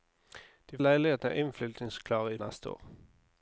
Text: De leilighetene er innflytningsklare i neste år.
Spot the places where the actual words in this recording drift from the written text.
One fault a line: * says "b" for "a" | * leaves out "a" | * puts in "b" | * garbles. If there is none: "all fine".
all fine